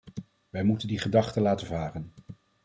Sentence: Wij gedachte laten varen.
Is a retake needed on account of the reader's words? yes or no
yes